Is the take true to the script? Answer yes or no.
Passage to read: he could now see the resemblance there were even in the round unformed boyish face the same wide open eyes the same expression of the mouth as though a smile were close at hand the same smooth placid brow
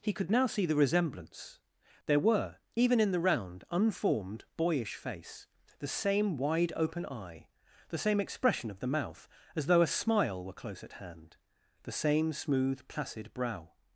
no